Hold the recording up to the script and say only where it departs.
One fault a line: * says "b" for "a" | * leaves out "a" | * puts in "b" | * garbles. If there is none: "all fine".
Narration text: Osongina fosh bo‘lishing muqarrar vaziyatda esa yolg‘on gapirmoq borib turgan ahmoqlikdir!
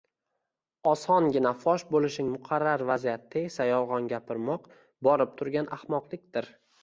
all fine